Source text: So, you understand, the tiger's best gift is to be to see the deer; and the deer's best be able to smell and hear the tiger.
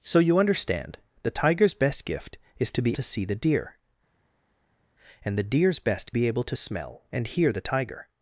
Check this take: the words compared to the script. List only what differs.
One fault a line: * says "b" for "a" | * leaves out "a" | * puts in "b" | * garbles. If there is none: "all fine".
all fine